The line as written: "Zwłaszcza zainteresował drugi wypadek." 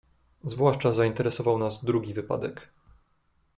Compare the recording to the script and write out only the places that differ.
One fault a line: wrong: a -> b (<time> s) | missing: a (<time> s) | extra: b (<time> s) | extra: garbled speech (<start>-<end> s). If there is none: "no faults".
extra: nas (1.6 s)